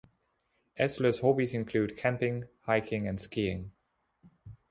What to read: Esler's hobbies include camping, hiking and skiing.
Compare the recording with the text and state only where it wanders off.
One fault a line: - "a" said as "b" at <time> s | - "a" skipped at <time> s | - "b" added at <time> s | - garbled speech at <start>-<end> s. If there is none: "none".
none